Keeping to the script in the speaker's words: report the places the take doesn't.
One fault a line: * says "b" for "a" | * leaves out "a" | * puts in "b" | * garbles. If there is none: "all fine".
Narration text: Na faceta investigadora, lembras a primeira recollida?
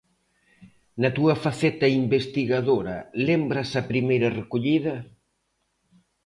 * puts in "túa"